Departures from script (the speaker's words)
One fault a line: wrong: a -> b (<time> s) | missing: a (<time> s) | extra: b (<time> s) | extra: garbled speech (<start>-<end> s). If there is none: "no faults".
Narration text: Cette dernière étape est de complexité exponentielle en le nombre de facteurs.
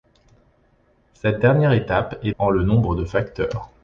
missing: de complexité exponentielle (2.3 s)